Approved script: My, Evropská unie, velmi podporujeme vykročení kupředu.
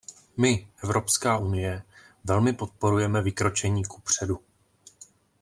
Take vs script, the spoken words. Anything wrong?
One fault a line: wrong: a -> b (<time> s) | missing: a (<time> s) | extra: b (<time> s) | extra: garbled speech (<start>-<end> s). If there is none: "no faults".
no faults